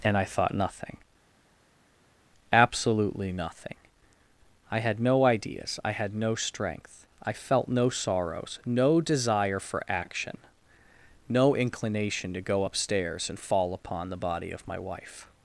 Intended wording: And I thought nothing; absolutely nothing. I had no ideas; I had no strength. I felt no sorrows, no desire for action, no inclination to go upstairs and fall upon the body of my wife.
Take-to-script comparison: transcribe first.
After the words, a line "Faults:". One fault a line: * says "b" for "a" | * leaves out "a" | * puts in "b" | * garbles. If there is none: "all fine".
And I thought nothing; absolutely nothing. I had no ideas; I had no strength. I felt no sorrows, no desire for action, no inclination to go upstairs and fall upon the body of my wife.
Faults:
all fine